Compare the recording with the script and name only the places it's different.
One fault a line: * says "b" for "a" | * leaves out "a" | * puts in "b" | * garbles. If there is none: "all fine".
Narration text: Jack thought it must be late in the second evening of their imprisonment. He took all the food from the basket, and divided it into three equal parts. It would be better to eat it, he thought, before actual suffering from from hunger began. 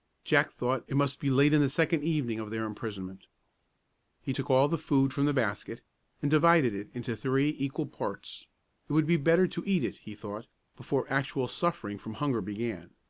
* leaves out "from"